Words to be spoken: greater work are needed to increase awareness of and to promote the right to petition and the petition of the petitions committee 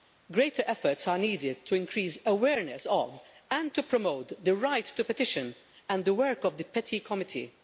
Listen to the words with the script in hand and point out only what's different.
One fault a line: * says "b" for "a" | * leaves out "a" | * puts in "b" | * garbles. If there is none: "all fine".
* says "efforts" for "work"
* says "work" for "petition"